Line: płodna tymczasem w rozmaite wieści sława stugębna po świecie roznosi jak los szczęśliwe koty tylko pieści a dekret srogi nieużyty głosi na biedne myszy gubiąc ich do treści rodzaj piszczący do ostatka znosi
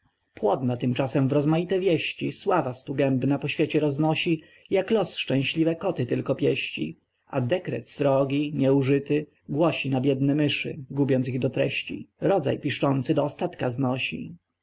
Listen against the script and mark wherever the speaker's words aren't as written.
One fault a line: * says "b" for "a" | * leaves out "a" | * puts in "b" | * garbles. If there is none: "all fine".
all fine